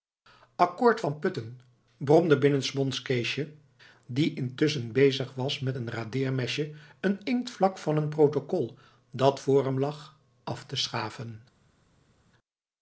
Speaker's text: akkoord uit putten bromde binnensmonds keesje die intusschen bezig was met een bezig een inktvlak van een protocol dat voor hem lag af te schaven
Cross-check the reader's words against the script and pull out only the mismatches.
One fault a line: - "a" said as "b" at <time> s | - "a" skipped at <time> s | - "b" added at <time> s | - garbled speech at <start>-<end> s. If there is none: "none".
- "uit" said as "van" at 1.0 s
- "bezig" said as "radeermesje" at 5.9 s